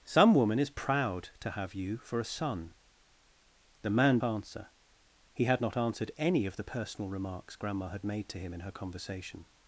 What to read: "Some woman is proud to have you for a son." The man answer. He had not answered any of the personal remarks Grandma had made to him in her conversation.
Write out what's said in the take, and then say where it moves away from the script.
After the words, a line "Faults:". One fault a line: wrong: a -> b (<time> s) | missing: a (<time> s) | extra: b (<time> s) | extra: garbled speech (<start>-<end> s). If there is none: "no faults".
"Some woman is proud to have you for a son." The man answer. He had not answered any of the personal remarks Grandma had made to him in her conversation.
Faults:
no faults